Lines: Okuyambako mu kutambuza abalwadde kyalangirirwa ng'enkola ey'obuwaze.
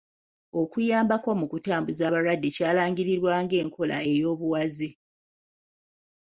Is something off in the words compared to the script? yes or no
no